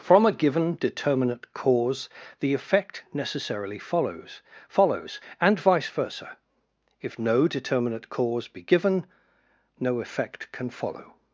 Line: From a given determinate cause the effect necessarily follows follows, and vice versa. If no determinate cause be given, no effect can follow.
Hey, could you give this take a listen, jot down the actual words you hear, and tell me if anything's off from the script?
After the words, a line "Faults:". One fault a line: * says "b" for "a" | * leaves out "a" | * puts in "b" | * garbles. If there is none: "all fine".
From a given determinate cause the effect necessarily follows follows, and vice versa. If no determinate cause be given, no effect can follow.
Faults:
all fine